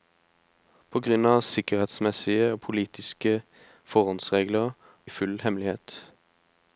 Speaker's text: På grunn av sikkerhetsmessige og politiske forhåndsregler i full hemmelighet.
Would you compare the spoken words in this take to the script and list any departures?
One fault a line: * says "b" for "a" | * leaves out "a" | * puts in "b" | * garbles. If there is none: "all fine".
all fine